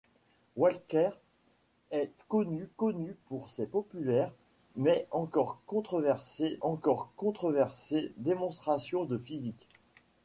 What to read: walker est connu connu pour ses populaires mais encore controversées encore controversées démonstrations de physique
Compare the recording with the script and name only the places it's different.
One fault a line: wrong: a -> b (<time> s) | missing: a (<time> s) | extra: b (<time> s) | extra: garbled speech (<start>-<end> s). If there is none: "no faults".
no faults